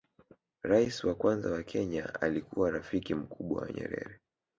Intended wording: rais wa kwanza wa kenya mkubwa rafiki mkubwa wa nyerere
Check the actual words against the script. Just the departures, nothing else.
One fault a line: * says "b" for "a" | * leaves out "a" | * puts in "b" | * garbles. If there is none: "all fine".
* says "alikuwa" for "mkubwa"